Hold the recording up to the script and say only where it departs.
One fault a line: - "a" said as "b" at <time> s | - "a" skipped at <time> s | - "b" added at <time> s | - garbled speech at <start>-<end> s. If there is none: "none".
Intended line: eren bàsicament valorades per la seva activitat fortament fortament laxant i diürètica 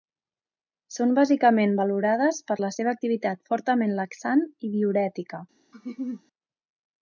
- "eren" said as "són" at 0.9 s
- "fortament" skipped at 4.0 s